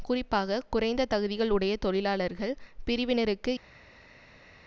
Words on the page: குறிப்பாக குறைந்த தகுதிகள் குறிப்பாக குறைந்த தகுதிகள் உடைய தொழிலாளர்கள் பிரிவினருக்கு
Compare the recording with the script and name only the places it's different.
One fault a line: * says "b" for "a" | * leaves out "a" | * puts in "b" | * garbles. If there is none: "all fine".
* leaves out "குறிப்பாக குறைந்த தகுதிகள்"